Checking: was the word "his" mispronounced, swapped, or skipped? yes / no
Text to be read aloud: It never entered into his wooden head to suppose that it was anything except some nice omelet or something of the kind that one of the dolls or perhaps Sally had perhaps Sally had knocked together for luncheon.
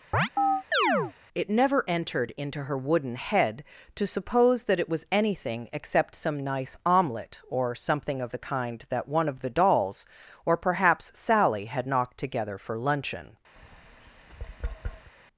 yes